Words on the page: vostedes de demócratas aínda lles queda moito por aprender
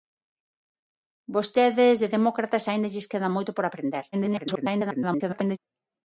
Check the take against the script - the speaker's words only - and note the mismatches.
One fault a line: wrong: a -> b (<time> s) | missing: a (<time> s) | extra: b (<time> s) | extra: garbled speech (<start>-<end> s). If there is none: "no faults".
extra: garbled speech (4.1-5.6 s)